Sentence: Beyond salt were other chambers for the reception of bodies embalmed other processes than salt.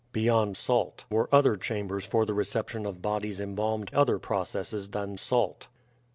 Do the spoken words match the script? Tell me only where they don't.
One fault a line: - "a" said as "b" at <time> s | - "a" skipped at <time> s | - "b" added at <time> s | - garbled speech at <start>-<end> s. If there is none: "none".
none